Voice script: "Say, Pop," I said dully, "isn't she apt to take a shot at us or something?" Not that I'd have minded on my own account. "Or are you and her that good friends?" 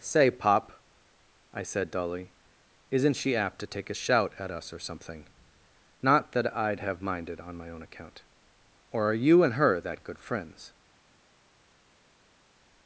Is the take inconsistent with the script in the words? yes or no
yes